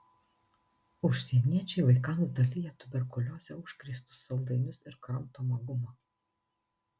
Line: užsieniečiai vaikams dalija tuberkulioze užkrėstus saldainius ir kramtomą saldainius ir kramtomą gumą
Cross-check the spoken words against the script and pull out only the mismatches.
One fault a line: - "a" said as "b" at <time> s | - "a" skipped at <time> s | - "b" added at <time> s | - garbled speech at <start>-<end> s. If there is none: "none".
- "saldainius ir kramtomą" skipped at 5.6 s